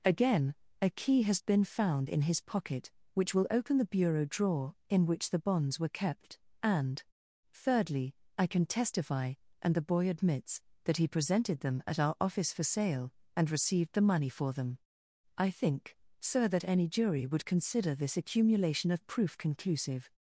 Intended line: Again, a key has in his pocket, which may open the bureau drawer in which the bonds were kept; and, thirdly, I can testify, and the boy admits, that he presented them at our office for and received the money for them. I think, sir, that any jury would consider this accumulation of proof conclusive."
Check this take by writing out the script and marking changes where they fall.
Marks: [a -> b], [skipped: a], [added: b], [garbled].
Again, a key has [added: been found] in his pocket, which [may -> will] open the bureau drawer in which the bonds were kept; and, thirdly, I can testify, and the boy admits, that he presented them at our office for [added: sale] and received the money for them. I think, sir, that any jury would consider this accumulation of proof conclusive."